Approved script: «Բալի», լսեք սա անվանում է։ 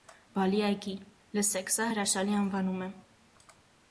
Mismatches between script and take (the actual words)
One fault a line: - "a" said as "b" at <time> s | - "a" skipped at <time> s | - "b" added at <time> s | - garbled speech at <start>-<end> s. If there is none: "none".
- "այգի" added at 0.7 s
- "հրաշալի" added at 1.9 s